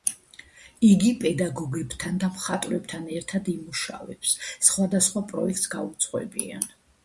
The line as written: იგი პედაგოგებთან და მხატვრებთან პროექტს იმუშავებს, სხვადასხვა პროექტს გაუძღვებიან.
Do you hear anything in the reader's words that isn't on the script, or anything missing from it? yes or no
yes